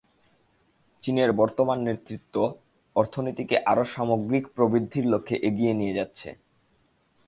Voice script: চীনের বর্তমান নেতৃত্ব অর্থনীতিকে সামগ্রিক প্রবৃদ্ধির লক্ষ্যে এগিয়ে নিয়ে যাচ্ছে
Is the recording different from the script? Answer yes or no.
yes